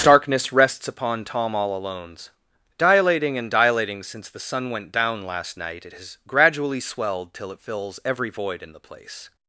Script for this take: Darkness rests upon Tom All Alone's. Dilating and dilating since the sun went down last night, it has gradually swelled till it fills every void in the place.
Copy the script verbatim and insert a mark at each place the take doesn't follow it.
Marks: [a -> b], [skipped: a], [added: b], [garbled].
Darkness rests upon Tom All Alone's. Dilating and dilating since the sun went down last night, it has gradually swelled till it fills every void in the place.